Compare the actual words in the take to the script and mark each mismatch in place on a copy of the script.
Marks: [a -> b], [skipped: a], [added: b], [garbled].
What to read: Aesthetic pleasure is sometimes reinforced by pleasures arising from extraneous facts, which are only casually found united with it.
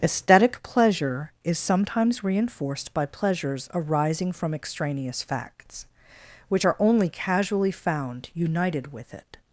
Aesthetic pleasure is sometimes reinforced by pleasures arising from extraneous facts, which are only casually found united with it.